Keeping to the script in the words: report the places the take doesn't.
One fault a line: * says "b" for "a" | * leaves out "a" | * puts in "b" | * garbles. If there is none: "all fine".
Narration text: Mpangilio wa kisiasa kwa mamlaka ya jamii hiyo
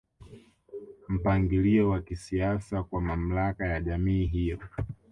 all fine